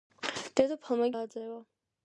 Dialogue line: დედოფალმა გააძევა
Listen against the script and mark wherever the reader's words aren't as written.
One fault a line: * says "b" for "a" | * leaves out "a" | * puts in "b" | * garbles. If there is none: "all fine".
all fine